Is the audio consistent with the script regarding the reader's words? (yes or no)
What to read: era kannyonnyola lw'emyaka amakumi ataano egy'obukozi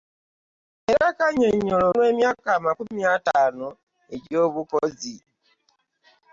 yes